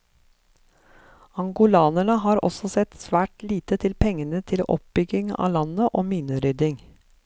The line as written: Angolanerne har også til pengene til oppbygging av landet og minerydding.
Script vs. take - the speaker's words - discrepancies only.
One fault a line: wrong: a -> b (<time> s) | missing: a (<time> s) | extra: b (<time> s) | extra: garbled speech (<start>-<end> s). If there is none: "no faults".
extra: sett svært lite (2.8 s)